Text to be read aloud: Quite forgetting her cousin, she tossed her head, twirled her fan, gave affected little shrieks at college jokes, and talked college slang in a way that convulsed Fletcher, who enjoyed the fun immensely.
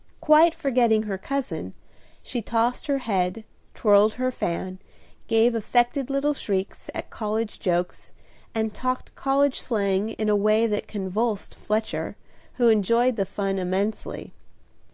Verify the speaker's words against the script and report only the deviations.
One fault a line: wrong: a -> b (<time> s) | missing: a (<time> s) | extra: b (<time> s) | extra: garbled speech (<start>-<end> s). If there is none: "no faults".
no faults